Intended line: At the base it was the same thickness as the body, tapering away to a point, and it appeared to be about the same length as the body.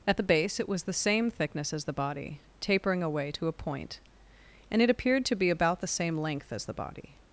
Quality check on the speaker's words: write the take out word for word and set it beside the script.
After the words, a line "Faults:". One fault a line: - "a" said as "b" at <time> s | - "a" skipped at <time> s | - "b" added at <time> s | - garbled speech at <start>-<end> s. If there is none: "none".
At the base it was the same thickness as the body, tapering away to a point, and it appeared to be about the same length as the body.
Faults:
none